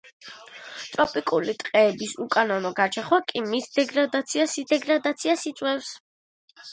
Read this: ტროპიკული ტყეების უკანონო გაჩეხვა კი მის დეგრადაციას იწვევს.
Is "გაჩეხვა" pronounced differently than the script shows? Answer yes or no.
no